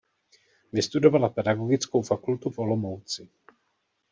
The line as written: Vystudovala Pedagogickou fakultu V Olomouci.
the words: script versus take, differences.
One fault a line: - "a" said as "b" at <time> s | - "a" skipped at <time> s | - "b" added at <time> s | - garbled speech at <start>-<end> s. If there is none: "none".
none